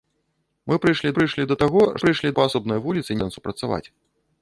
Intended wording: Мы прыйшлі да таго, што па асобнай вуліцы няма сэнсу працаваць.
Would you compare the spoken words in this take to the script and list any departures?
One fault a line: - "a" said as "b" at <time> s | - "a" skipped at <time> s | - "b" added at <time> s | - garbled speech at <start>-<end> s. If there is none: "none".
- "прыйшлі" added at 1.2 s
- "што" said as "прыйшлі" at 2.0 s
- "няма" skipped at 3.2 s